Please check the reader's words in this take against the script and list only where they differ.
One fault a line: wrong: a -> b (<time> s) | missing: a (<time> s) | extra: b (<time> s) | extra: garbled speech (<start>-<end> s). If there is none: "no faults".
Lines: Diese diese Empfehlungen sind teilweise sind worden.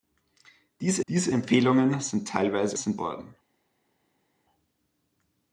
no faults